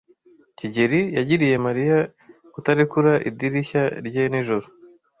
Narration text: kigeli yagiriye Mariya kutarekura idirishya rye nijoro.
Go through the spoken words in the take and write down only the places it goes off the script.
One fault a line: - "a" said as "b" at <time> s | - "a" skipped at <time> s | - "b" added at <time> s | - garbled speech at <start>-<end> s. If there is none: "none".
none